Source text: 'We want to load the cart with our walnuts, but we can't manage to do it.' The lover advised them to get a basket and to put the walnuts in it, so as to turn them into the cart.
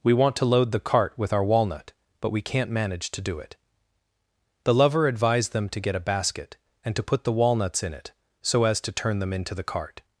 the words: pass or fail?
fail